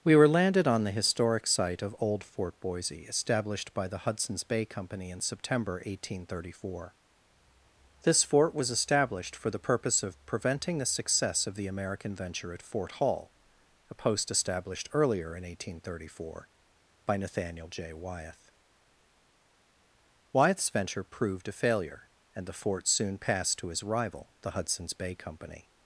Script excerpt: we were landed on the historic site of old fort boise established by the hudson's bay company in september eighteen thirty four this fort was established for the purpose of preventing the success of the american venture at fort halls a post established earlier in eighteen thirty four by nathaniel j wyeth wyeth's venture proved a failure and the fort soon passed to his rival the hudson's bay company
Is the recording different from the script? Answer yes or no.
yes